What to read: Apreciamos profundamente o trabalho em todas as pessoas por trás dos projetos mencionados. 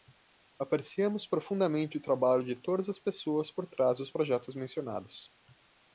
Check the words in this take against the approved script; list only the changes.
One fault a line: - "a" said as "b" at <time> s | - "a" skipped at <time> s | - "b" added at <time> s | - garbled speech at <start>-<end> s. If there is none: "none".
- "em" said as "de" at 2.4 s